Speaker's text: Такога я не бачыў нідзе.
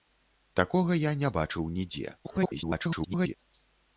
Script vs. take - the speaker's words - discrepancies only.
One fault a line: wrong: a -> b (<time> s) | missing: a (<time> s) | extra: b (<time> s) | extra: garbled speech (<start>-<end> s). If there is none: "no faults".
extra: garbled speech (2.2-3.3 s)